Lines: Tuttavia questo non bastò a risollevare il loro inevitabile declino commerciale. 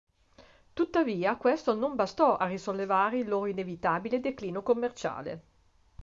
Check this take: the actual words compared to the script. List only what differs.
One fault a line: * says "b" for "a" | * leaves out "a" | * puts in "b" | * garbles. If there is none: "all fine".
all fine